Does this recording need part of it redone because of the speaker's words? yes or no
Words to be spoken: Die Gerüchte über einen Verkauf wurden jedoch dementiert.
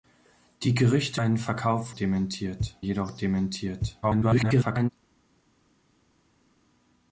yes